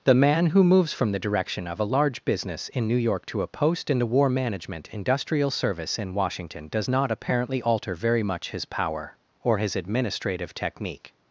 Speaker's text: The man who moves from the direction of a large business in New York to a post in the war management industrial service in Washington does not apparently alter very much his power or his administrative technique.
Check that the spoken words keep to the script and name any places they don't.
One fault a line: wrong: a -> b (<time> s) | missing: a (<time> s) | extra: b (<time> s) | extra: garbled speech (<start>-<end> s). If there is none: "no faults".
no faults